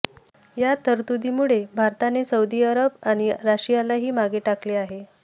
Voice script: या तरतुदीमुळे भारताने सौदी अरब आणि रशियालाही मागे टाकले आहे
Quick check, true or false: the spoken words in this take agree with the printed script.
true